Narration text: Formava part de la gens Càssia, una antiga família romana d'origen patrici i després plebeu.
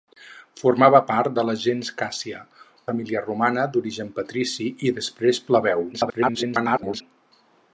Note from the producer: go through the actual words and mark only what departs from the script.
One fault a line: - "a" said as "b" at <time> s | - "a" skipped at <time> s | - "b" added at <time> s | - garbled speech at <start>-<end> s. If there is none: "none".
- "una antiga" skipped at 2.4 s
- garbled speech at 5.9-7.0 s